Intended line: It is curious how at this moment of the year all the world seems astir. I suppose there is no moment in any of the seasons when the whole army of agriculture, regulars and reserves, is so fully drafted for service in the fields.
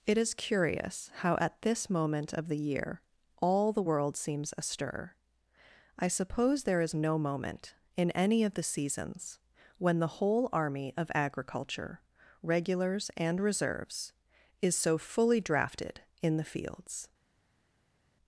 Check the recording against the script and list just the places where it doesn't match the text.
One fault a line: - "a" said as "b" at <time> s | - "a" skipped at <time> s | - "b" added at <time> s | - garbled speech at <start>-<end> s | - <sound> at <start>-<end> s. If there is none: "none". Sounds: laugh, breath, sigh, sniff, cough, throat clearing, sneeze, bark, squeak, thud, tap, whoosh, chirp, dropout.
- "for service" skipped at 16.0 s